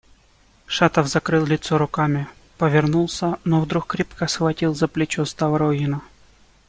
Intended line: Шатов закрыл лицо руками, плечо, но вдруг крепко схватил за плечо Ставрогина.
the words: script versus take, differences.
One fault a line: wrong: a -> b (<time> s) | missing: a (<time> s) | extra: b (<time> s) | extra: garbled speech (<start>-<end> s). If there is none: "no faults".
wrong: плечо -> повернулся (2.6 s)